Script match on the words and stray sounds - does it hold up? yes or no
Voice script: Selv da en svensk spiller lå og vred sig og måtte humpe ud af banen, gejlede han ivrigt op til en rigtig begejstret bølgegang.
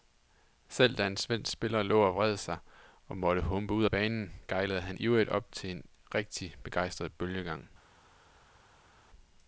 yes